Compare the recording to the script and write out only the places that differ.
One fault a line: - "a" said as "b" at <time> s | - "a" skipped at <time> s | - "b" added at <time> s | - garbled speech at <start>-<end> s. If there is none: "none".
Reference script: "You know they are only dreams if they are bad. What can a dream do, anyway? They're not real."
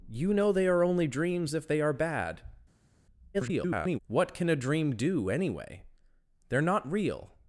- garbled speech at 3.3-4.0 s